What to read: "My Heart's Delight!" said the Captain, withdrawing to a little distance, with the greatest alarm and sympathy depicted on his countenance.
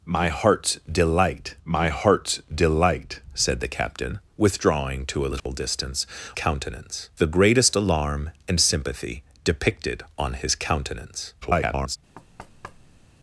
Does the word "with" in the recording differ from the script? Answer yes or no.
yes